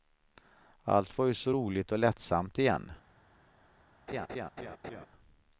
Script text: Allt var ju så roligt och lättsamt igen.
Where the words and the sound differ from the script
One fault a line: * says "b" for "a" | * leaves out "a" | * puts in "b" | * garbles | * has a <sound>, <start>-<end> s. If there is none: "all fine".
* has a laugh, 4.1-5.1 s